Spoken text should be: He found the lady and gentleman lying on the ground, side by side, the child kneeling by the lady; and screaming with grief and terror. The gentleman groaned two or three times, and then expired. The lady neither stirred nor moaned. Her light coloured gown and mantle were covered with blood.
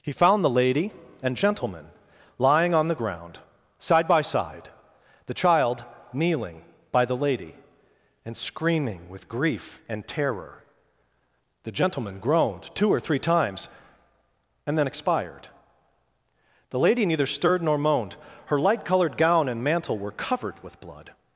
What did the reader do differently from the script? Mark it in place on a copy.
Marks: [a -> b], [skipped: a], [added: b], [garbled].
He found the lady and gentleman lying on the ground, side by side, the child kneeling by the lady; and screaming with grief and terror. The gentleman groaned two or three times, and then expired. The lady neither stirred nor moaned. Her light coloured gown and mantle were covered with blood.